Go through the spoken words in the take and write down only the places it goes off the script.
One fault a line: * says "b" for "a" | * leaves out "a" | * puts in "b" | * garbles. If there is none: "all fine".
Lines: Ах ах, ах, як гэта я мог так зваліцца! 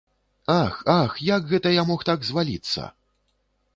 * leaves out "ах"